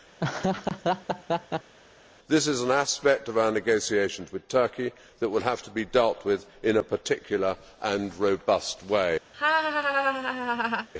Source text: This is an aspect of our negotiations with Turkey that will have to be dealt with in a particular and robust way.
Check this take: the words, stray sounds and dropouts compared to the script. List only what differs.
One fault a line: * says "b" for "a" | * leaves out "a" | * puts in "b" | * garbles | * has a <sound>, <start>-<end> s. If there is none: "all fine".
* has a laugh, 0.2-1.7 s
* has a laugh, 9.3-10.9 s